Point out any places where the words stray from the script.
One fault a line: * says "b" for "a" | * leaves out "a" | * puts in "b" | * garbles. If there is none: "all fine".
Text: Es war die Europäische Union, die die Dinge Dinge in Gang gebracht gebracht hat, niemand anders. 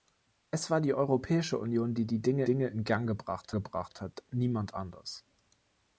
all fine